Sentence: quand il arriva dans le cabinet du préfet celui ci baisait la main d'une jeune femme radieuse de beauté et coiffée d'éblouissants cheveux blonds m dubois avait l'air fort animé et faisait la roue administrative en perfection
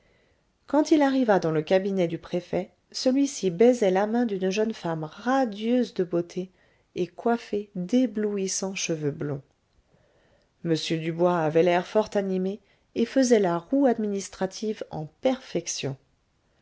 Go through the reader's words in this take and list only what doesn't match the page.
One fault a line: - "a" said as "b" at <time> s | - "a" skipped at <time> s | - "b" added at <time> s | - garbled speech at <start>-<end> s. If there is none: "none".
none